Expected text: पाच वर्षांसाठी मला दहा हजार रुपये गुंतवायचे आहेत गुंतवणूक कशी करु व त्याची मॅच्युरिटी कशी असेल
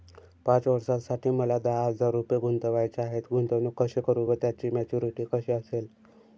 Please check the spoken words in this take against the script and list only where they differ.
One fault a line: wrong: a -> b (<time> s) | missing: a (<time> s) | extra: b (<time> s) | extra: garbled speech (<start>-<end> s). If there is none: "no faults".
no faults